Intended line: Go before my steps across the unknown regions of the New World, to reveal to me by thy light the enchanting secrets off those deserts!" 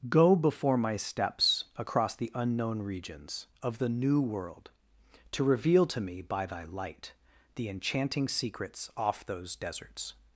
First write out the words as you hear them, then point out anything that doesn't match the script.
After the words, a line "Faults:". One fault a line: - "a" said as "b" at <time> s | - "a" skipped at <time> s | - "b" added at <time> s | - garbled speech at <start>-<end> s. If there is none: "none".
Go before my steps across the unknown regions of the New World, to reveal to me by thy light the enchanting secrets off those deserts!"
Faults:
none